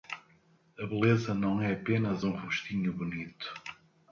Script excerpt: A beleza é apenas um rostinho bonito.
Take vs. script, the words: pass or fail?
fail